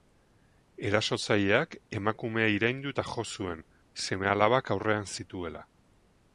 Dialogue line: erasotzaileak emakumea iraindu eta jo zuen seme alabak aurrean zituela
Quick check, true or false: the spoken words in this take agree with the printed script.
true